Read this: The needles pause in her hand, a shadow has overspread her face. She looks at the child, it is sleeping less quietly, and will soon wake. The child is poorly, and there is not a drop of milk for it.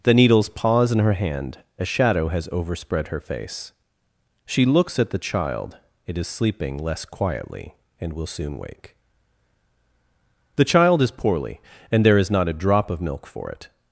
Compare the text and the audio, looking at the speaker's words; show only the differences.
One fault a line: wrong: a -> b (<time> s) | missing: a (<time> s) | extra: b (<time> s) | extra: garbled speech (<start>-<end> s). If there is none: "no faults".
no faults